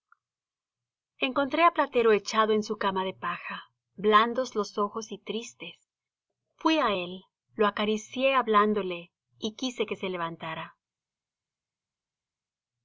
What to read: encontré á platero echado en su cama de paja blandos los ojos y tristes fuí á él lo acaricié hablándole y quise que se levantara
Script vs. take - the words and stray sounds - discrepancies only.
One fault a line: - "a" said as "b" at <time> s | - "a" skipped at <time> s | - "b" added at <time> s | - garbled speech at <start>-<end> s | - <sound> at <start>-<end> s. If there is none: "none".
none